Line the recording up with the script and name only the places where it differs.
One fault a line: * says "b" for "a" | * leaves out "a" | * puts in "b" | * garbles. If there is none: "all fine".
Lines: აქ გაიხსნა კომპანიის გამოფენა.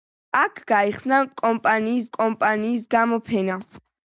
* puts in "კომპანიის"